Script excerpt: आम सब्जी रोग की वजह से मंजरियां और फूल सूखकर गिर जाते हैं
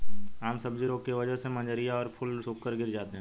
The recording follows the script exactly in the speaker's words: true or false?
true